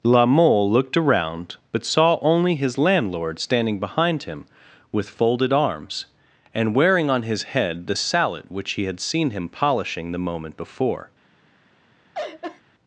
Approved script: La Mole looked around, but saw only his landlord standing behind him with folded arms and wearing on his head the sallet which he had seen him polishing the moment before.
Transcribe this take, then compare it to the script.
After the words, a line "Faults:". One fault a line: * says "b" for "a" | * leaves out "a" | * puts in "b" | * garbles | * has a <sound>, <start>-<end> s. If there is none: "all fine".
La Mole looked around, but saw only his landlord standing behind him with folded arms and wearing on his head the sallet which he had seen him polishing the moment before.
Faults:
* has a laugh, 12.1-12.6 s